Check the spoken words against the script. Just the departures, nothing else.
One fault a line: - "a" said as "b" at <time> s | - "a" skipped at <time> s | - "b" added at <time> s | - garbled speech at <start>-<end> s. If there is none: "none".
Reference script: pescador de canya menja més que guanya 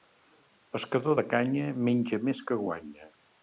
none